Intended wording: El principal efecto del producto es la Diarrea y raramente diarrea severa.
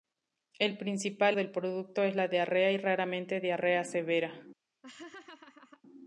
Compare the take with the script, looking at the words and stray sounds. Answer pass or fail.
fail